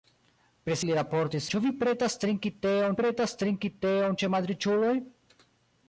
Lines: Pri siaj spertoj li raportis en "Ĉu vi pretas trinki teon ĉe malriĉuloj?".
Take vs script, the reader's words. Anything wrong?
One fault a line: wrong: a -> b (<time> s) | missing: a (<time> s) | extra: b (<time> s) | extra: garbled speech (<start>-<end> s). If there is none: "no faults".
missing: siaj spertoj (0.8 s)
missing: en (1.5 s)
extra: pretas trinki teon (3.0 s)